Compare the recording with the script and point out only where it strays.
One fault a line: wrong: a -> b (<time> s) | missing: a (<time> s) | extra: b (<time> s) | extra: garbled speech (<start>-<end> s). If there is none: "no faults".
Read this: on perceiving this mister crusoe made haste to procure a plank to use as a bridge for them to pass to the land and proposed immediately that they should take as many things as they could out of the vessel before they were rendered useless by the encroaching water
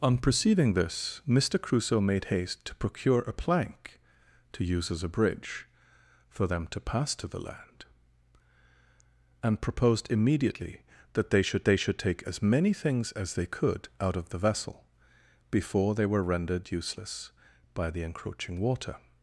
extra: they should (11.6 s)